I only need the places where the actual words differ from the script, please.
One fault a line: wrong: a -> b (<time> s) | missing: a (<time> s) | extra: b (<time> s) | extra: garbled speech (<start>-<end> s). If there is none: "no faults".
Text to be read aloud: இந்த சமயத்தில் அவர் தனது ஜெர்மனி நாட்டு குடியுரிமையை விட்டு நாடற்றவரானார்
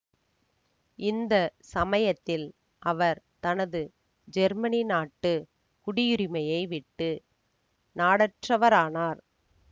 no faults